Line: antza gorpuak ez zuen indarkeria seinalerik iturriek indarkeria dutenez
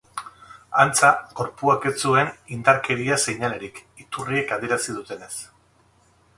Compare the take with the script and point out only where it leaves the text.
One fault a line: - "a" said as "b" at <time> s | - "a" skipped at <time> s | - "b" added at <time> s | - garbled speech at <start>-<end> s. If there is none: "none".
- "indarkeria" said as "adierazi" at 4.6 s